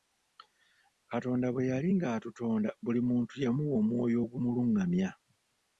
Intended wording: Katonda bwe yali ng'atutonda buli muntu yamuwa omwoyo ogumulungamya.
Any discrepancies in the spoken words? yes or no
no